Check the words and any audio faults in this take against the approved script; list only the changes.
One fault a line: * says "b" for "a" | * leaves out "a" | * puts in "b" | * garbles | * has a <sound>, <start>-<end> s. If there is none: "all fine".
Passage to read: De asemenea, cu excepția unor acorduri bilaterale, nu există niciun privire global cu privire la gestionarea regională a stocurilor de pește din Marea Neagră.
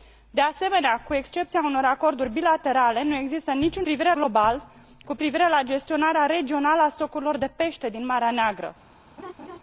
* has a laugh, 9.2-9.6 s